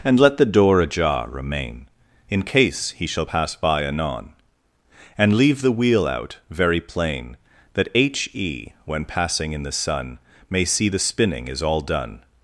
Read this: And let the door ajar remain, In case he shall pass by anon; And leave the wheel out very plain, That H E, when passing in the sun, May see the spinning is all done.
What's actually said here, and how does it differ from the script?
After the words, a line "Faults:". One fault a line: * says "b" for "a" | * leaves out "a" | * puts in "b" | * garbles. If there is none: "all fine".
And let the door ajar remain, In case he shall pass by anon; And leave the wheel out very plain, That H E, when passing in the sun, May see the spinning is all done.
Faults:
all fine